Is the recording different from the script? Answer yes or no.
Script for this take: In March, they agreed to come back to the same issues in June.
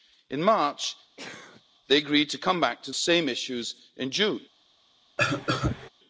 yes